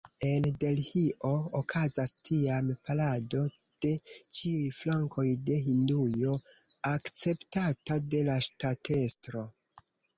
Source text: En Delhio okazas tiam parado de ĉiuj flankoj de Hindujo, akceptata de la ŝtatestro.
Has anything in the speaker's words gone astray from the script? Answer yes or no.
no